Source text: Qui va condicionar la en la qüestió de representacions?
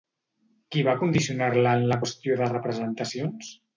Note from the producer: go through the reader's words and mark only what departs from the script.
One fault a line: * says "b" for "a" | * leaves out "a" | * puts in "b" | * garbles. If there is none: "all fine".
all fine